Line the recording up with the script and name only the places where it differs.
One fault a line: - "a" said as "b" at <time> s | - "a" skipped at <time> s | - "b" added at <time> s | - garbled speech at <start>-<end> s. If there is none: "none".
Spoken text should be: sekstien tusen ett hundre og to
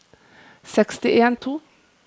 - "tusen ett hundre" skipped at 1.4 s